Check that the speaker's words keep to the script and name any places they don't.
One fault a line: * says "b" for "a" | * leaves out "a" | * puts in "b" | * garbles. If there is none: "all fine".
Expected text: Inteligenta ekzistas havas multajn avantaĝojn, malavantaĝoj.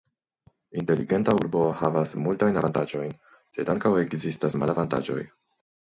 * says "urbo" for "ekzistas"
* puts in "sed ankaŭ ekzistas"